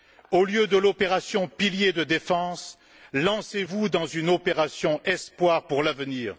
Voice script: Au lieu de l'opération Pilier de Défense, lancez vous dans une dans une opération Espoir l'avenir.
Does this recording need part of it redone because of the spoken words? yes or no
yes